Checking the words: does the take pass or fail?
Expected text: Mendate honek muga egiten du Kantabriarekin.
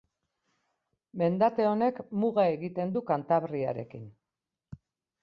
pass